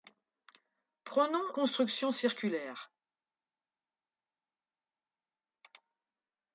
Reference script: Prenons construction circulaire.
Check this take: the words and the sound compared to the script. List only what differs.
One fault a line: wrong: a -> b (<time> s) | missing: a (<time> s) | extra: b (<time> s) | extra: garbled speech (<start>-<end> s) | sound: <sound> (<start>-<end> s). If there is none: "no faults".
no faults